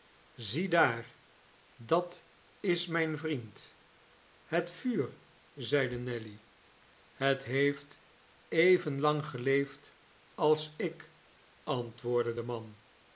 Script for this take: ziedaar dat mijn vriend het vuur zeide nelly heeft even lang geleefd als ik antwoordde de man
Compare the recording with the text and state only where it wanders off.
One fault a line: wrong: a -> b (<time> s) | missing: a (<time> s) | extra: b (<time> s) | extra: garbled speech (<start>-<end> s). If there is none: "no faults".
extra: is (2.6 s)
extra: het (7.1 s)